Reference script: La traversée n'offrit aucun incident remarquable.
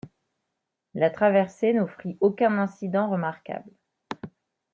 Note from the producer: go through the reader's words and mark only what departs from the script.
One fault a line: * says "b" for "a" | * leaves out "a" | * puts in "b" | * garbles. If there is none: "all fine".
all fine